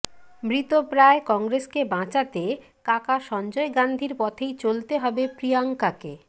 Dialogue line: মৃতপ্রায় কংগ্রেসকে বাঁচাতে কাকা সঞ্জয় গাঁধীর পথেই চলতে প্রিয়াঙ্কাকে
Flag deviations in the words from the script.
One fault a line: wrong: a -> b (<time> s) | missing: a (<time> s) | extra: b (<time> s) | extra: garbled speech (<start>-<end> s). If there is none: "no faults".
extra: হবে (5.0 s)